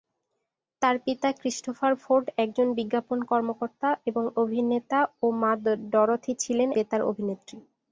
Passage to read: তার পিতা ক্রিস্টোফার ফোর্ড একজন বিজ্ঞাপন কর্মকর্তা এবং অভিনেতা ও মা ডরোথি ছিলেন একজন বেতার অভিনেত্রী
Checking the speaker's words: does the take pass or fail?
fail